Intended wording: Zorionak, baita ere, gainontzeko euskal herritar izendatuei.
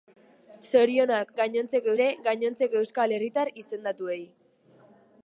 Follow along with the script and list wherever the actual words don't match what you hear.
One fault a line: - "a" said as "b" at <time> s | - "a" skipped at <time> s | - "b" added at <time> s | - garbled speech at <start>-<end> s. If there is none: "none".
- "baita" said as "gainontzeko" at 1.4 s